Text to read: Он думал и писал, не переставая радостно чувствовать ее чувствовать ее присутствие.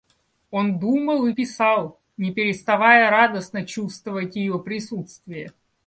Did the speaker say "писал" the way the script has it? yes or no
yes